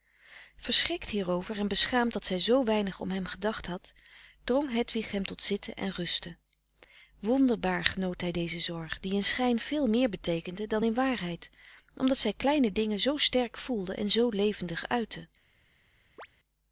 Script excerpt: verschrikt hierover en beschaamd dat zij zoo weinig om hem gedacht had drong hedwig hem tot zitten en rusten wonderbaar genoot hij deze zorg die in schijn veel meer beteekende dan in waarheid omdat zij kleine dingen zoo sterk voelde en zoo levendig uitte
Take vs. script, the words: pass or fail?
pass